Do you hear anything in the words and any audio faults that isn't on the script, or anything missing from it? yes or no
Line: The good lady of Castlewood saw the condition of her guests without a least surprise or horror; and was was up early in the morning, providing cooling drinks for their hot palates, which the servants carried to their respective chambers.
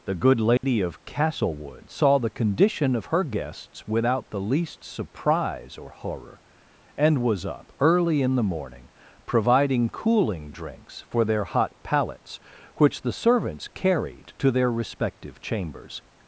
yes